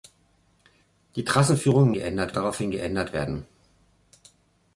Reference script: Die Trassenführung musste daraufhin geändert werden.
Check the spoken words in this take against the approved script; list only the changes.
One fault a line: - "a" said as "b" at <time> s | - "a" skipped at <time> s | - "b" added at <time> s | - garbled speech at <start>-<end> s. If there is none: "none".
- "musste" said as "geändert" at 1.9 s